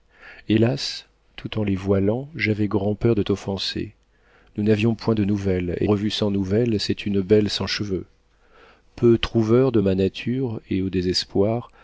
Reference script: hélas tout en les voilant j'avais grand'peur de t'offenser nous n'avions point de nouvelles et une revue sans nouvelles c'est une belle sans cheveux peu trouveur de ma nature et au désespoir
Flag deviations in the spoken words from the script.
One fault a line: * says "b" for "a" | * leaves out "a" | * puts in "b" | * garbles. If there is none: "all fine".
* leaves out "une"